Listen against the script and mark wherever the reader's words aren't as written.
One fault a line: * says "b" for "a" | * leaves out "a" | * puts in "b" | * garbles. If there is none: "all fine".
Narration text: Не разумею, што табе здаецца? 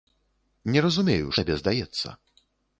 * leaves out "што"